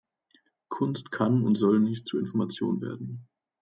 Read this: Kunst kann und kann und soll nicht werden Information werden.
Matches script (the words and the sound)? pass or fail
fail